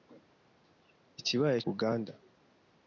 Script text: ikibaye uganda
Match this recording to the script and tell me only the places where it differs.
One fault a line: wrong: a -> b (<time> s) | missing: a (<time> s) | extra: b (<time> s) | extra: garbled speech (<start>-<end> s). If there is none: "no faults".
no faults